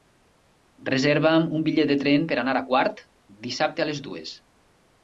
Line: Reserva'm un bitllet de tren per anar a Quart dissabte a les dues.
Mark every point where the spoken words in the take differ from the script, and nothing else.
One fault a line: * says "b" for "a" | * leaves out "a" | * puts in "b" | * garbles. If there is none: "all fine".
all fine